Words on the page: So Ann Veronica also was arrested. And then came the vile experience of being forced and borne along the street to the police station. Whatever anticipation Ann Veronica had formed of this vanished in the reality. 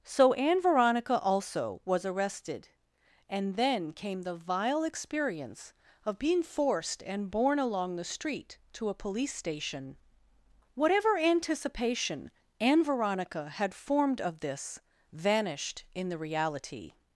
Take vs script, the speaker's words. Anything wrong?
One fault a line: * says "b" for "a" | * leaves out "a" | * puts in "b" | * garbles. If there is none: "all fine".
* says "a" for "the"